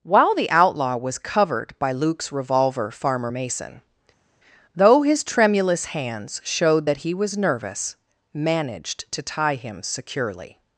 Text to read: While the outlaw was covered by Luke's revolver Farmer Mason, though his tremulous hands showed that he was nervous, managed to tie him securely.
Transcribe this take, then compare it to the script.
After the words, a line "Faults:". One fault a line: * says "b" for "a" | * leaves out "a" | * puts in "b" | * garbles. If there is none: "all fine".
While the outlaw was covered by Luke's revolver Farmer Mason, though his tremulous hands showed that he was nervous, managed to tie him securely.
Faults:
all fine